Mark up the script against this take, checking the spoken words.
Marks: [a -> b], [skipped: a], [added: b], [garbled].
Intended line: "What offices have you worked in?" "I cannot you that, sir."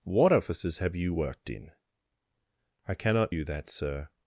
"What offices have you worked in?" "I cannot you that, sir."